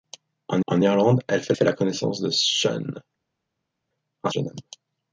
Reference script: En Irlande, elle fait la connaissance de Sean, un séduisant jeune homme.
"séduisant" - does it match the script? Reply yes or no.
no